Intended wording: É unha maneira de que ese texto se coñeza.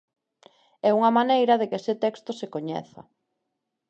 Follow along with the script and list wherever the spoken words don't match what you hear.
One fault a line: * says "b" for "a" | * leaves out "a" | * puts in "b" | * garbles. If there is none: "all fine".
all fine